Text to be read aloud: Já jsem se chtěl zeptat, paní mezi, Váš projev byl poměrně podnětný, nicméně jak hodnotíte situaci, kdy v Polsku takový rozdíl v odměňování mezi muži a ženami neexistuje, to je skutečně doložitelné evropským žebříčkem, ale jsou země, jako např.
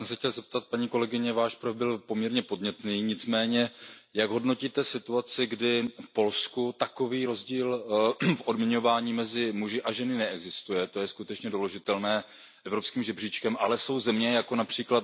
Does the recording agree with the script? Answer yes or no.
no